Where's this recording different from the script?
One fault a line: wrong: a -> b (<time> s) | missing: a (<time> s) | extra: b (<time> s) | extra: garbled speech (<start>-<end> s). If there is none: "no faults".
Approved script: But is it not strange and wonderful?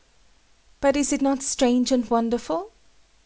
no faults